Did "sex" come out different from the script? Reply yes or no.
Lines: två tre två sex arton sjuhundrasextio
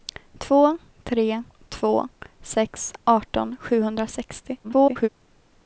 no